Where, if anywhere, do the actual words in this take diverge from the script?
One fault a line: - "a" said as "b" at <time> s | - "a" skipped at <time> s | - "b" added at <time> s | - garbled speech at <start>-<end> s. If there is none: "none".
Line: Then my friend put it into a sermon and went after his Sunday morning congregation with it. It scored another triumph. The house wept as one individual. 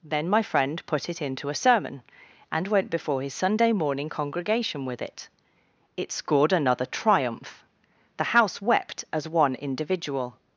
- "after" said as "before" at 2.9 s